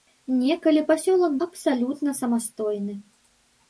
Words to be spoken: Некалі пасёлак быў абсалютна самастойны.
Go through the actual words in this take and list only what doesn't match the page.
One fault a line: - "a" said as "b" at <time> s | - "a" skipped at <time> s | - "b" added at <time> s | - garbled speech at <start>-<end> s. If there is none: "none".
- "быў" skipped at 1.4 s